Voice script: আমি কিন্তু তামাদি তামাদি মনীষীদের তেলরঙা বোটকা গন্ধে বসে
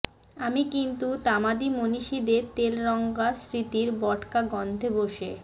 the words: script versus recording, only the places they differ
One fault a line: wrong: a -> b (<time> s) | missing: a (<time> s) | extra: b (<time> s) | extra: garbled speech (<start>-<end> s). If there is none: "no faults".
missing: তামাদি (1.7 s)
extra: স্মৃতির (3.4 s)